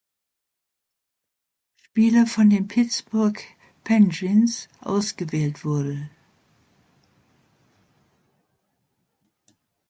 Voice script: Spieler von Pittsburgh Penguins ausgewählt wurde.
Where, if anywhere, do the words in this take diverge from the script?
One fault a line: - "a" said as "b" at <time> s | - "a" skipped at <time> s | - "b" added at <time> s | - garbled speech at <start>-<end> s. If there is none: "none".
- "den" added at 2.5 s